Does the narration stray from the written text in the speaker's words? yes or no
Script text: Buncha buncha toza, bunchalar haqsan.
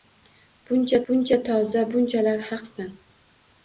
no